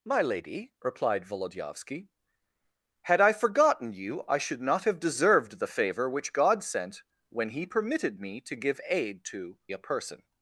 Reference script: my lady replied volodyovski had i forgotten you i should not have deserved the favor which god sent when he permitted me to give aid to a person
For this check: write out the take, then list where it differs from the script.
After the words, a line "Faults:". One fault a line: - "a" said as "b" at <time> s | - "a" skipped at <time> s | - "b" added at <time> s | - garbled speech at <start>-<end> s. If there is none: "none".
my lady replied volodyovski had i forgotten you i should not have deserved the favor which god sent when he permitted me to give aid to a person
Faults:
none